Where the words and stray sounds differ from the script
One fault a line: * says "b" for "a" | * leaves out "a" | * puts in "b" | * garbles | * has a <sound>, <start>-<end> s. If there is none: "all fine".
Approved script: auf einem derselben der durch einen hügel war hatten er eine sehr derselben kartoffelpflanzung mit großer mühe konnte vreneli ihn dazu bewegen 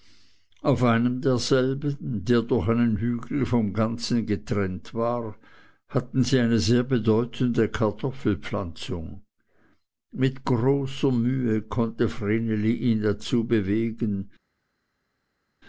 * puts in "vom ganzen getrennt"
* says "sie" for "er"
* says "bedeutende" for "derselben"